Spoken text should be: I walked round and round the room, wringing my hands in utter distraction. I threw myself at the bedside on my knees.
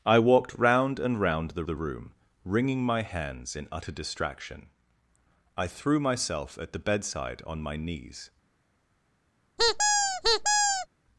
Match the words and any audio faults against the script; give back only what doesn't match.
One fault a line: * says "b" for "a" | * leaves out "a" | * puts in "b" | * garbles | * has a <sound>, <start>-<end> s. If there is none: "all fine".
* puts in "the"
* has a squeak, 9.6-10.9 s